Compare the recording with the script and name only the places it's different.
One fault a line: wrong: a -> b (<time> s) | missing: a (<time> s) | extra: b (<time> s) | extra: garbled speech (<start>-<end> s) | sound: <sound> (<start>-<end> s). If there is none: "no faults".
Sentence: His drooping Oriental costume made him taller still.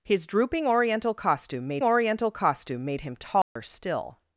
extra: Oriental costume made (1.8 s)
sound: dropout (3.4-3.6 s)